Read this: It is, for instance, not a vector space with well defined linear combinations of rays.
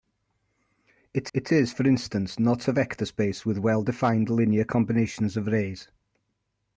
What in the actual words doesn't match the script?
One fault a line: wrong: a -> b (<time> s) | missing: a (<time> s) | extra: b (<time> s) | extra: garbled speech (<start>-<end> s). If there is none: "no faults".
extra: it (1.3 s)